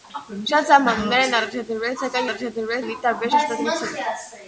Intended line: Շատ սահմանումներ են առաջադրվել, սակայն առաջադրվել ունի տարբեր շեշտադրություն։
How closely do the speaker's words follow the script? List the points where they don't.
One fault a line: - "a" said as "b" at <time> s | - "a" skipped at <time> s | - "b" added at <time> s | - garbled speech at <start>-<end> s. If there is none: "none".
none